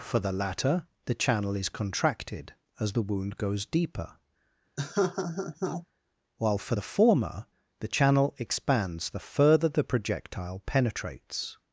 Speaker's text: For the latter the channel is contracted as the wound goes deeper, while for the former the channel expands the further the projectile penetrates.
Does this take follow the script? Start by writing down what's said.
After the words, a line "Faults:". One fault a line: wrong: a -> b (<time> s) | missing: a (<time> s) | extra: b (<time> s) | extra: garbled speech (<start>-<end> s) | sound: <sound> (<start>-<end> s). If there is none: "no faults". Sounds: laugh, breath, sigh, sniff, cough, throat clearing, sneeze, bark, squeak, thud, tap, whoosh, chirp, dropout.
For the latter the channel is contracted as the wound goes deeper, while for the former the channel expands the further the projectile penetrates.
Faults:
sound: laugh (4.8-5.9 s)